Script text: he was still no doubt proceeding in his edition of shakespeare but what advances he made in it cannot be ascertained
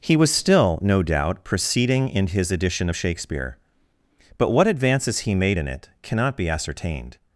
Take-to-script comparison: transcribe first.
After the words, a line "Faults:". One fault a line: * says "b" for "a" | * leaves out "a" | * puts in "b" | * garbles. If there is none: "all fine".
he was still no doubt proceeding in his edition of shakespeare but what advances he made in it cannot be ascertained
Faults:
all fine